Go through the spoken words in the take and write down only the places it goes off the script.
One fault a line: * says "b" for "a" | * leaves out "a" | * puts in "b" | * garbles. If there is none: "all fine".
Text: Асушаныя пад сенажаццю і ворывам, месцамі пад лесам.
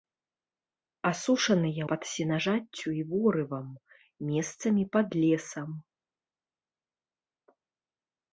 all fine